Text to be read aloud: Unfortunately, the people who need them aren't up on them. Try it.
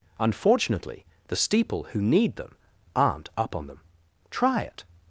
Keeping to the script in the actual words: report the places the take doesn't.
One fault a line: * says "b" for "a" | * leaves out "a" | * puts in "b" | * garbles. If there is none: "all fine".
* says "steeple" for "people"